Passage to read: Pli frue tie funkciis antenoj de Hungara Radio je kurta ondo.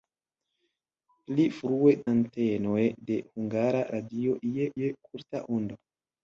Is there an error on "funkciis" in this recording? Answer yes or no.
yes